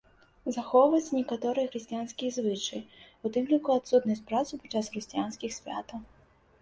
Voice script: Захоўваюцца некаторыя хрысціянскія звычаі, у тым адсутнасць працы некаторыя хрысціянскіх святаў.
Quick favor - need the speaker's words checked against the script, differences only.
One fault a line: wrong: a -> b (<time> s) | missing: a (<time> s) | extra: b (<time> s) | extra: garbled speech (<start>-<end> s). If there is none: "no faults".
extra: ліку (3.5 s)
wrong: некаторыя -> падчас (4.6 s)